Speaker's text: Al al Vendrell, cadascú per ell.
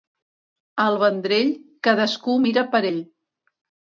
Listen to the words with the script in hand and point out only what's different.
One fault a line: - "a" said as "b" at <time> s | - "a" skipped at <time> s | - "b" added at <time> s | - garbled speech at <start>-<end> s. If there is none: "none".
- "al" skipped at 1.0 s
- "mira" added at 2.4 s